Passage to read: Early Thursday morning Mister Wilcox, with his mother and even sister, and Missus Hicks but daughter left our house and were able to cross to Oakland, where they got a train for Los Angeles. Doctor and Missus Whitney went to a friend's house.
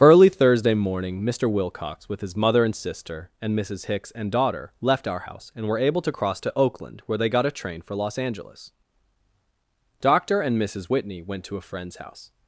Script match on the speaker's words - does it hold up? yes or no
no